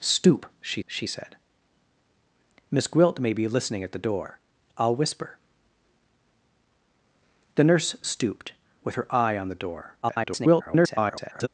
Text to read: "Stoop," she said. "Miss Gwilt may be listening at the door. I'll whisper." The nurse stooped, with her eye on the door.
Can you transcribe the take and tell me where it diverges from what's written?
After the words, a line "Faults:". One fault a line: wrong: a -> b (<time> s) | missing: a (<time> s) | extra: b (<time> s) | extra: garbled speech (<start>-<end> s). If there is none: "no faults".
"Stoop," she she said. "Miss Gwilt may be listening at the door. I'll whisper." The nurse stooped, with her eye on the door. [garbled]
Faults:
extra: she (0.8 s)
extra: garbled speech (10.0-11.5 s)